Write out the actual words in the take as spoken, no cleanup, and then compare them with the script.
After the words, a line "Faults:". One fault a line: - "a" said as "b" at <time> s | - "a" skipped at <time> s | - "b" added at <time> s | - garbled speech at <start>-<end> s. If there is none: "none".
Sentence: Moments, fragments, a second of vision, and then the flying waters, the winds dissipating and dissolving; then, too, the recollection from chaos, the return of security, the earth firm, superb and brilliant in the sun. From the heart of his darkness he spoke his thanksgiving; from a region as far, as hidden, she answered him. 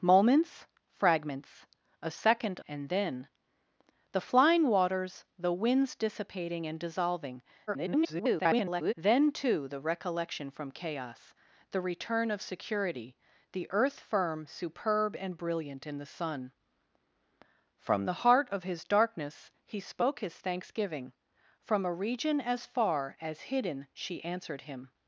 Moments, fragments, a second and then the flying waters, the winds dissipating and dissolving; [garbled] then, too, the recollection from chaos, the return of security, the earth firm, superb and brilliant in the sun. From the heart of his darkness he spoke his thanksgiving; from a region as far, as hidden, she answered him.
Faults:
- "of vision" skipped at 2.6 s
- garbled speech at 7.7-8.9 s